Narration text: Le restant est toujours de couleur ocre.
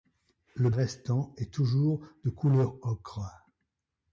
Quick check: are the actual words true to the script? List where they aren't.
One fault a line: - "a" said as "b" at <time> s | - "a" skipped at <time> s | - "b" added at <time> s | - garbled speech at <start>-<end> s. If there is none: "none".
none